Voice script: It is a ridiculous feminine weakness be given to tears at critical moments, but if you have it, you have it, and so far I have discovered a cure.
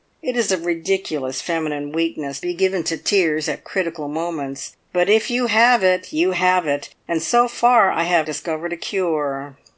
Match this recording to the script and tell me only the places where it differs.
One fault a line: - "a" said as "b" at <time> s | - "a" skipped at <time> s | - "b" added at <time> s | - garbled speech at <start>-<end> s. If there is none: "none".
none